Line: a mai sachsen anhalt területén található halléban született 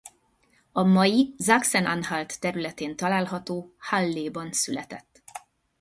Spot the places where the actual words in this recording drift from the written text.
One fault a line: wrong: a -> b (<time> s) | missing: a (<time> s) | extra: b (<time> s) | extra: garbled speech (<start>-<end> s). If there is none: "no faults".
no faults